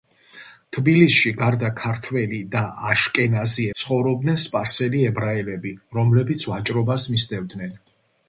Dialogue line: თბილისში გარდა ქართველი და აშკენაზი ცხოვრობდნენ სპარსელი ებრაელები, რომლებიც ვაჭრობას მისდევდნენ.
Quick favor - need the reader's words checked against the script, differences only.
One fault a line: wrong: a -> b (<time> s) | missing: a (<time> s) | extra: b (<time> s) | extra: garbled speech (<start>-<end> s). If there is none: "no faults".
no faults